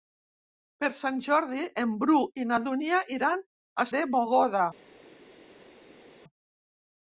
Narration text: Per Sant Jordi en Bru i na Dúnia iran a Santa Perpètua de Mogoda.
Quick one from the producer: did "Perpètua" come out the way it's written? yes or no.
no